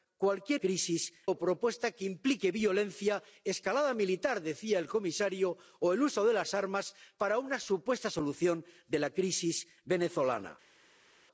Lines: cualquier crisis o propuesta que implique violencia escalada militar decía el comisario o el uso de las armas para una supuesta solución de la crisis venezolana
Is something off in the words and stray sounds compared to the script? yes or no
no